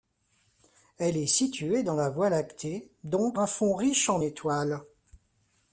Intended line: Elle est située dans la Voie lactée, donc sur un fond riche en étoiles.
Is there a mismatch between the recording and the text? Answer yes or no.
yes